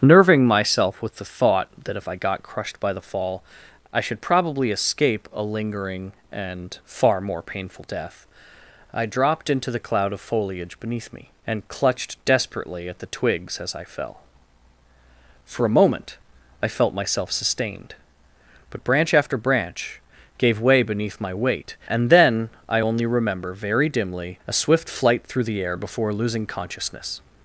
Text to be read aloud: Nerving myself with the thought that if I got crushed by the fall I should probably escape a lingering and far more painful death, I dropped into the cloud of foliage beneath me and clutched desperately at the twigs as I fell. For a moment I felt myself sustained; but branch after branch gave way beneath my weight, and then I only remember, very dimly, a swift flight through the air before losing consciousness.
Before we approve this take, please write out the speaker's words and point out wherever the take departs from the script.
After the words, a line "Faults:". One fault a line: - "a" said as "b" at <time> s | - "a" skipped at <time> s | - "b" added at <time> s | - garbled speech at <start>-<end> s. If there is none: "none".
Nerving myself with the thought that if I got crushed by the fall I should probably escape a lingering and far more painful death, I dropped into the cloud of foliage beneath me and clutched desperately at the twigs as I fell. For a moment I felt myself sustained; but branch after branch gave way beneath my weight, and then I only remember, very dimly, a swift flight through the air before losing consciousness.
Faults:
none